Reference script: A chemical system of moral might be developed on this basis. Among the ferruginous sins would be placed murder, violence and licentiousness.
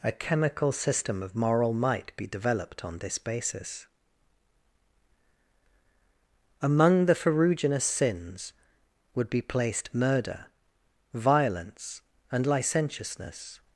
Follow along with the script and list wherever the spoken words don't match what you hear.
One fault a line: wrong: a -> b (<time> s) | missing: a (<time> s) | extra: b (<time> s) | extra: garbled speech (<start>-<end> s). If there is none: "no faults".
no faults